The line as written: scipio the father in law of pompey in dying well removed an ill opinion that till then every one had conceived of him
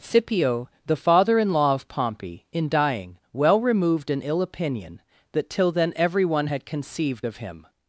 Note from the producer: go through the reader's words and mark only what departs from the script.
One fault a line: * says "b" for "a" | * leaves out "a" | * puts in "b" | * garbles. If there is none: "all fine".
all fine